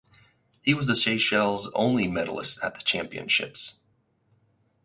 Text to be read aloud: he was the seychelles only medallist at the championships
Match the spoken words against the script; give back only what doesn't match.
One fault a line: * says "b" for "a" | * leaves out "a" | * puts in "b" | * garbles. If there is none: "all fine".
all fine